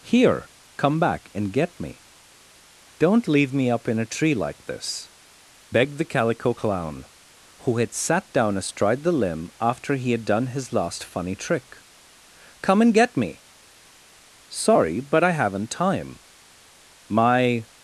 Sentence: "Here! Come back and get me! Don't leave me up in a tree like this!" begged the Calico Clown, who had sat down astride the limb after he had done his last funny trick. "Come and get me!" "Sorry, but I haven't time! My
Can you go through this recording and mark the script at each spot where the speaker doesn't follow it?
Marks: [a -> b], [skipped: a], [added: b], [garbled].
"Here! Come back and get me! Don't leave me up in a tree like this!" begged the Calico Clown, who had sat down astride the limb after he had done his last funny trick. "Come and get me!" "Sorry, but I haven't time! My